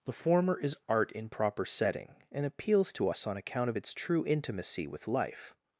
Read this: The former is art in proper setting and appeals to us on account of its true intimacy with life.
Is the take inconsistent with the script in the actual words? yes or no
no